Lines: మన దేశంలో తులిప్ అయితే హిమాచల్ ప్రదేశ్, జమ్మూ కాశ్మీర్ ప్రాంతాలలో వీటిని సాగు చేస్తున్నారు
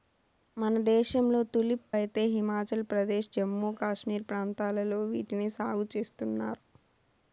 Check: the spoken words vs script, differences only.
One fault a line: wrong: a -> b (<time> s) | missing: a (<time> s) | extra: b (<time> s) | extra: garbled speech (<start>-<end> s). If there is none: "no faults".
no faults